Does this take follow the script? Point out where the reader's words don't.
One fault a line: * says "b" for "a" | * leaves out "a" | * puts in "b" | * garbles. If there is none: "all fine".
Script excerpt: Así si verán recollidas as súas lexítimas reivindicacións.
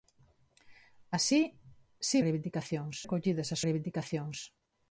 * says "reivindicacións" for "verán"
* leaves out "súas lexítimas"